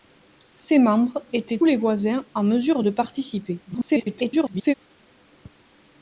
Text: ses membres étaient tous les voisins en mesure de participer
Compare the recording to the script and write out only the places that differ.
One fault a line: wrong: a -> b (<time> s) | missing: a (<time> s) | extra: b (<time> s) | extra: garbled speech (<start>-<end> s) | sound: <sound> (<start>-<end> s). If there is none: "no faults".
missing: tous (1.6 s)
extra: garbled speech (3.7-4.7 s)